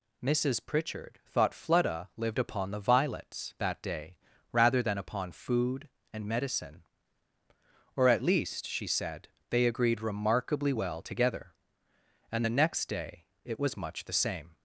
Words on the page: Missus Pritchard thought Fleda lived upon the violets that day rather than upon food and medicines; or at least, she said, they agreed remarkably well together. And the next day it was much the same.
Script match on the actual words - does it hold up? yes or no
no